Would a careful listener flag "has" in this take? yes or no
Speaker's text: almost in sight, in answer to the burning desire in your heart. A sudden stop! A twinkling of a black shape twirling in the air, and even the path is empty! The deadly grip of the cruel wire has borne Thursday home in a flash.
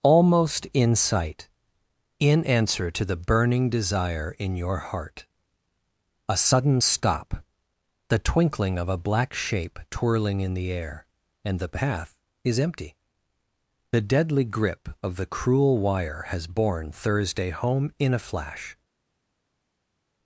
no